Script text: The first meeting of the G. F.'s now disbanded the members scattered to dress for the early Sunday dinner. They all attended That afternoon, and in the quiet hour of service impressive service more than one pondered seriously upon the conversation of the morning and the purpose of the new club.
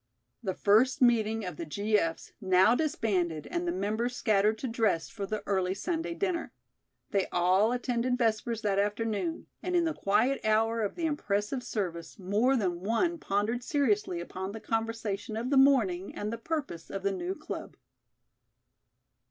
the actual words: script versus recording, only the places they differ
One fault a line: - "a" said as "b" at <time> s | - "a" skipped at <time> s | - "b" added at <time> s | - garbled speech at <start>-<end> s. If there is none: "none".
- "and" added at 3.5 s
- "Vespers" added at 8.2 s
- "service" said as "the" at 10.9 s